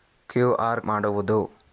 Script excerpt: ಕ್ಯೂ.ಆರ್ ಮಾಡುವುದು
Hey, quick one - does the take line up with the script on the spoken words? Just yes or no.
yes